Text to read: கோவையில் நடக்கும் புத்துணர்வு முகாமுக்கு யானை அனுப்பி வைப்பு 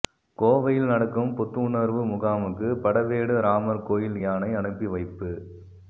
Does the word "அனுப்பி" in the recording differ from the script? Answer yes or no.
no